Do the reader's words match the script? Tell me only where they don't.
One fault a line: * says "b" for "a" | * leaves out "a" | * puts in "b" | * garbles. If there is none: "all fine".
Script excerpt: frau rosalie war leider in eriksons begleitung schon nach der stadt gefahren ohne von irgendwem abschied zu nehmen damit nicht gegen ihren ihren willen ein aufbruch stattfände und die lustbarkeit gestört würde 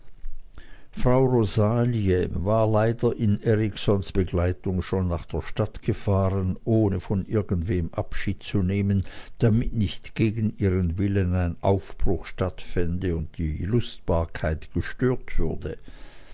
* leaves out "ihren"